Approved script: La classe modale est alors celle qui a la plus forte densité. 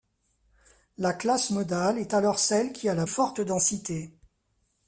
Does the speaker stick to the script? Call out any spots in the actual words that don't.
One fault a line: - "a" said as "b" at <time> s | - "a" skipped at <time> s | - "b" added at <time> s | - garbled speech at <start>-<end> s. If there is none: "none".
- "plus" skipped at 3.0 s